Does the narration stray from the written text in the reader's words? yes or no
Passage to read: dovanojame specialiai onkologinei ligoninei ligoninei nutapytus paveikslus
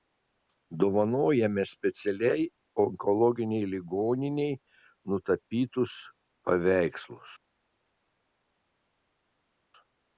yes